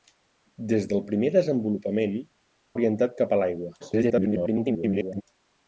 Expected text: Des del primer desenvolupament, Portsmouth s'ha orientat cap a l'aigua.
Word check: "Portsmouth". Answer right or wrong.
wrong